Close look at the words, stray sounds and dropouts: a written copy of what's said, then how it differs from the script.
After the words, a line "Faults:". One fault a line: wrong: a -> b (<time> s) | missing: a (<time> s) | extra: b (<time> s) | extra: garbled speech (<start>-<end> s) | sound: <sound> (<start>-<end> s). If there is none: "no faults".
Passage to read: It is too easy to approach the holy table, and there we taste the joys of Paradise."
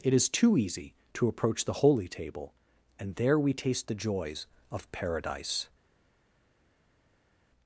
It is too easy to approach the holy table, and there we taste the joys of Paradise."
Faults:
no faults